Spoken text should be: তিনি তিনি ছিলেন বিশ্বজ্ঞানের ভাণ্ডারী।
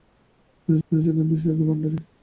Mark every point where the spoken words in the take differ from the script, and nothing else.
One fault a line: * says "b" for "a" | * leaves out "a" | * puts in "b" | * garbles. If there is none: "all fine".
all fine